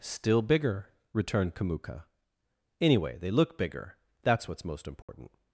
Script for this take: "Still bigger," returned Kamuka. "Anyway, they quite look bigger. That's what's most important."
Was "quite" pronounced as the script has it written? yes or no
no